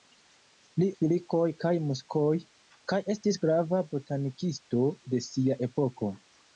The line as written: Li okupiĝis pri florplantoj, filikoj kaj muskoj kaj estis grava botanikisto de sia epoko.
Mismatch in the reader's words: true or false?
true